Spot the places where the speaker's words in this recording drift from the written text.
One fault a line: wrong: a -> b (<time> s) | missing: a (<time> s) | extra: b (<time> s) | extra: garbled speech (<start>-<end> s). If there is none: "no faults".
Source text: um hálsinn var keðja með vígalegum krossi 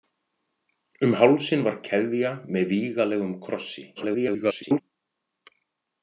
extra: garbled speech (4.0-4.8 s)